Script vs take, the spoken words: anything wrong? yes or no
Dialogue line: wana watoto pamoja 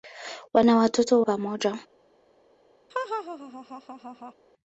no